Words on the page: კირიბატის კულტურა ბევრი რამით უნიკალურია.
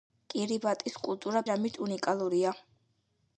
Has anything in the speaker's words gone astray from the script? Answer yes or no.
yes